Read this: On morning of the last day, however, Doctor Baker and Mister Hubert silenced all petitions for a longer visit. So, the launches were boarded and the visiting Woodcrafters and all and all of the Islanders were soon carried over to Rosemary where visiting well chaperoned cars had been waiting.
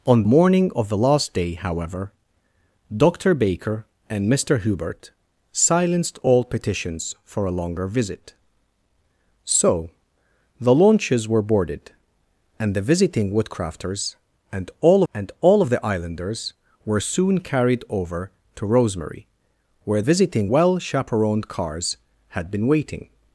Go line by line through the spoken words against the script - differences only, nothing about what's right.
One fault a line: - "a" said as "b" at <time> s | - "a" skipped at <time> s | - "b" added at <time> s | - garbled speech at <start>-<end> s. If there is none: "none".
none